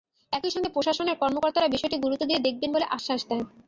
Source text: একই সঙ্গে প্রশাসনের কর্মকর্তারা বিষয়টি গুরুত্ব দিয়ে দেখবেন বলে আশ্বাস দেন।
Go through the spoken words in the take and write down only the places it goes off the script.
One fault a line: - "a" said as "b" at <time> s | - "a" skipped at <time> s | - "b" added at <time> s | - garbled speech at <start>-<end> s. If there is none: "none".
none